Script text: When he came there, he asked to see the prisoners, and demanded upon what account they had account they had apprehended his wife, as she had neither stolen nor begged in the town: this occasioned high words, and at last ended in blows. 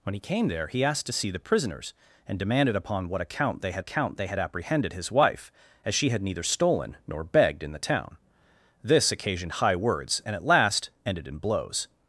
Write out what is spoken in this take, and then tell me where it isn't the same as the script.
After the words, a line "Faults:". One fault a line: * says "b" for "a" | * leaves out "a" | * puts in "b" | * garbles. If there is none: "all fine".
When he came there, he asked to see the prisoners, and demanded upon what account they had account they had apprehended his wife, as she had neither stolen nor begged in the town: this occasioned high words, and at last ended in blows.
Faults:
all fine